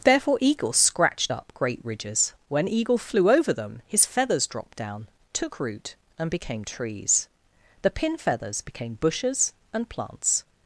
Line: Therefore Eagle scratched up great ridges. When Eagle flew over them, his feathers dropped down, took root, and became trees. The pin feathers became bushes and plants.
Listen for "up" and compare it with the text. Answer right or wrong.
right